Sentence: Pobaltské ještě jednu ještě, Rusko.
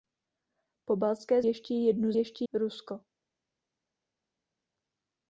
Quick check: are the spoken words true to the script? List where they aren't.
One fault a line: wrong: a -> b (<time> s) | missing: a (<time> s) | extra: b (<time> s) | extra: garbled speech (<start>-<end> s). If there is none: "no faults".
no faults